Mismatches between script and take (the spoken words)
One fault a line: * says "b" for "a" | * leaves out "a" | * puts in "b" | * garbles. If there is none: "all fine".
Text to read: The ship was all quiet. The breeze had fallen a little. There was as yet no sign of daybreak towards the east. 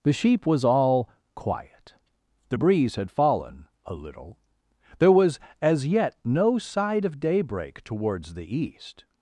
* says "sheep" for "ship"
* says "side" for "sign"